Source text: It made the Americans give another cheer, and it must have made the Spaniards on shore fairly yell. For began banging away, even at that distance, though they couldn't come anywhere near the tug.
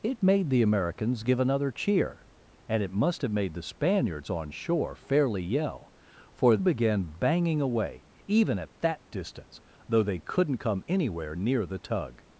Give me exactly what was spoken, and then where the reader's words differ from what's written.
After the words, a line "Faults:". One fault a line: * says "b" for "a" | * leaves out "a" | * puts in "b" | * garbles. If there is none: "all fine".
It made the Americans give another cheer, and it must have made the Spaniards on shore fairly yell. For began banging away, even at that distance, though they couldn't come anywhere near the tug.
Faults:
all fine